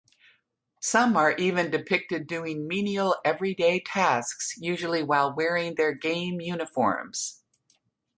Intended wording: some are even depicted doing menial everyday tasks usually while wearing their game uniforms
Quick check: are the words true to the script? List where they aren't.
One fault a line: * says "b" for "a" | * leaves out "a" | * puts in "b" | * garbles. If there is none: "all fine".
all fine